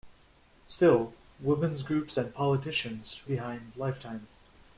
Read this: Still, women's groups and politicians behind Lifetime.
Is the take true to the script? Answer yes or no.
yes